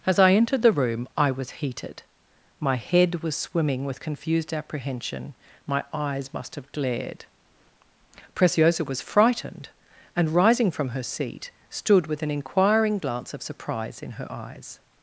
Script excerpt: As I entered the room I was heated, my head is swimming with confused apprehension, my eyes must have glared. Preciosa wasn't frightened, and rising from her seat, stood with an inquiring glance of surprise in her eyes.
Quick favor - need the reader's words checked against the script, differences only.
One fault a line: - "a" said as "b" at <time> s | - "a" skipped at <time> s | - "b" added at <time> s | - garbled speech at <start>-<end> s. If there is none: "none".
- "is" said as "was" at 3.2 s
- "wasn't" said as "was" at 8.8 s